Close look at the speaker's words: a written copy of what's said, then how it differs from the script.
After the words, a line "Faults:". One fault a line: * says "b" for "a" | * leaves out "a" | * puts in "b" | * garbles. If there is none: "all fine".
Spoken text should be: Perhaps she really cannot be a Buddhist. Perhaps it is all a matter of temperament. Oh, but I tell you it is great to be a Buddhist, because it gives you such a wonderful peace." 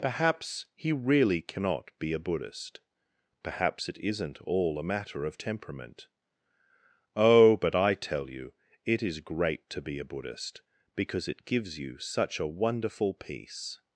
Perhaps he really cannot be a Buddhist. Perhaps it isn't all a matter of temperament. Oh, but I tell you it is great to be a Buddhist, because it gives you such a wonderful peace."
Faults:
* says "he" for "she"
* says "isn't" for "is"